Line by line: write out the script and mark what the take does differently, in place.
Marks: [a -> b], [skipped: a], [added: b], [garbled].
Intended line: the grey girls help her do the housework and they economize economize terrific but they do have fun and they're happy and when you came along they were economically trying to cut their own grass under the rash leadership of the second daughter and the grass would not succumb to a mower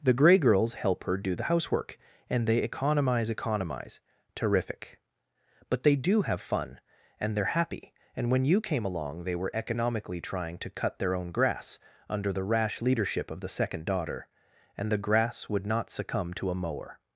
the grey girls help her do the housework and they economize economize terrific but they do have fun and they're happy and when you came along they were economically trying to cut their own grass under the rash leadership of the second daughter and the grass would not succumb to a mower